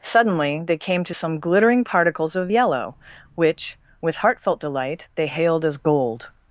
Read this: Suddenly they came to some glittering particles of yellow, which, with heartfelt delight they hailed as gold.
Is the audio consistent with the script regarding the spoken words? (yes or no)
yes